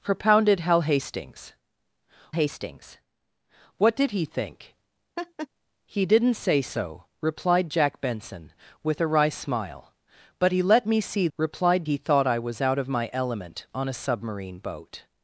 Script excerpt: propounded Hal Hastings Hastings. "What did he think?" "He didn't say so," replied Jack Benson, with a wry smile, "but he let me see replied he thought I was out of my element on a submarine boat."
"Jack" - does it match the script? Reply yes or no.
yes